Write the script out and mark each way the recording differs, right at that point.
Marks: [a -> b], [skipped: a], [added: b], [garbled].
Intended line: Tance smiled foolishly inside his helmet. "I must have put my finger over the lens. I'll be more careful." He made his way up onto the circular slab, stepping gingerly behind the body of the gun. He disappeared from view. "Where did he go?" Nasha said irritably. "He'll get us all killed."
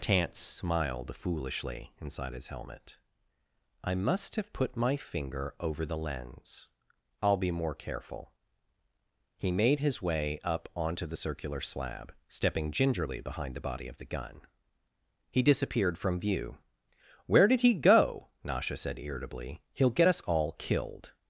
Tance smiled foolishly inside his helmet. "I must have put my finger over the lens. I'll be more careful." He made his way up onto the circular slab, stepping gingerly behind the body of the gun. He disappeared from view. "Where did he go?" Nasha said irritably. "He'll get us all killed."